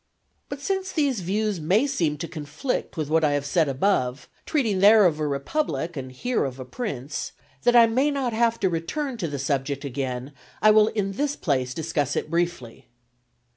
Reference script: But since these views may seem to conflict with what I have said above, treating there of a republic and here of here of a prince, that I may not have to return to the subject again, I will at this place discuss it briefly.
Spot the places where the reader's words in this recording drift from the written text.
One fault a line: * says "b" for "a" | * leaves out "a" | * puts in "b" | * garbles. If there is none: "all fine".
* leaves out "here of"
* says "in" for "at"